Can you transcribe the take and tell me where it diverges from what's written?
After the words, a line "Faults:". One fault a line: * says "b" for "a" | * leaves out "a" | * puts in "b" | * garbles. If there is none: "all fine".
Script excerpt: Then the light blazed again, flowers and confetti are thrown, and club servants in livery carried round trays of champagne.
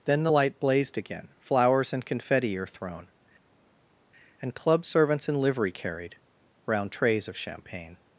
Then the light blazed again, flowers and confetti are thrown, and club servants in livery carried round trays of champagne.
Faults:
all fine